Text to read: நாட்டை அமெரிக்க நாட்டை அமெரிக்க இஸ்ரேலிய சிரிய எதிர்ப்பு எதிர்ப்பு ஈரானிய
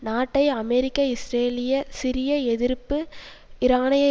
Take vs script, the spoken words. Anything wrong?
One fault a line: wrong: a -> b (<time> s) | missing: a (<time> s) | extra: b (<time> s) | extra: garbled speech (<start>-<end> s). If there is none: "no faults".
missing: நாட்டை அமெரிக்க (1.0 s)
missing: எதிர்ப்பு (3.0 s)